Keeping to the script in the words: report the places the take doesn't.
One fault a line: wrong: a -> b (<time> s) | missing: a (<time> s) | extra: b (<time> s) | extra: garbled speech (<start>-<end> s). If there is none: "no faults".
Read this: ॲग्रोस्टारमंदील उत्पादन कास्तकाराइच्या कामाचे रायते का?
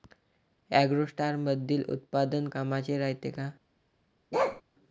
missing: कास्तकाराइच्या (2.5 s)